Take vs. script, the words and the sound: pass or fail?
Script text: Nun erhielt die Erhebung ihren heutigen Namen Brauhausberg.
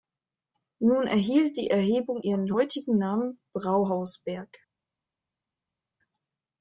pass